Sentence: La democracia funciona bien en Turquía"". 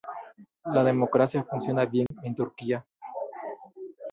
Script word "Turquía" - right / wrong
right